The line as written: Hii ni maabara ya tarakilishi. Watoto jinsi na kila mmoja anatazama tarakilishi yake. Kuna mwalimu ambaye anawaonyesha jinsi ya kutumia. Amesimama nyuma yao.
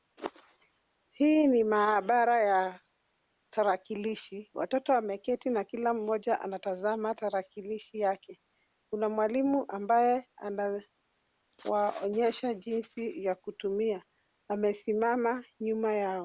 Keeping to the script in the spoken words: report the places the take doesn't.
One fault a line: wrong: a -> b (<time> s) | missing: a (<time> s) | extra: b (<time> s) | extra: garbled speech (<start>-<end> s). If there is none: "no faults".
wrong: jinsi -> wameketi (4.9 s)